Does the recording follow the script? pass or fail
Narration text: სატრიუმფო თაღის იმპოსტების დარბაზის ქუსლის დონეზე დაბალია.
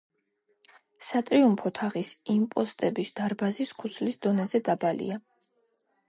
pass